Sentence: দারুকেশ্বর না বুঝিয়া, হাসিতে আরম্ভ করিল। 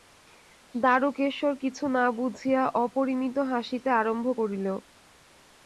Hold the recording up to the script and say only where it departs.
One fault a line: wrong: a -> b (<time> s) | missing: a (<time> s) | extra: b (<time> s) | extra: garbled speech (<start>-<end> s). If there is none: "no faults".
extra: কিছু (1.6 s)
extra: অপরিমিত (2.8 s)